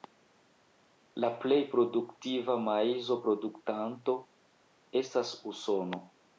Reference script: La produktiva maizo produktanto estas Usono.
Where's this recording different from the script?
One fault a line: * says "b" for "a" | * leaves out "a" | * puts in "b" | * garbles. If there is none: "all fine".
* puts in "plej"